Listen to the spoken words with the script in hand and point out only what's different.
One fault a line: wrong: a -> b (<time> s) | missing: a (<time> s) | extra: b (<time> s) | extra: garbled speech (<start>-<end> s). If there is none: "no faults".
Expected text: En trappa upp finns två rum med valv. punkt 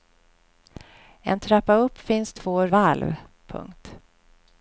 missing: rum med (2.7 s)